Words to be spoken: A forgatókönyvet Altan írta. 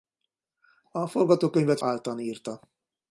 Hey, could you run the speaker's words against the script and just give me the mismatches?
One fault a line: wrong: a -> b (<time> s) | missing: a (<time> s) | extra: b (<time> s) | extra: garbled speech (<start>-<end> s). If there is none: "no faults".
no faults